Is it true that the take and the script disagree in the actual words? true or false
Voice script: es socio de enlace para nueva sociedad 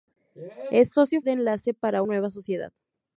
false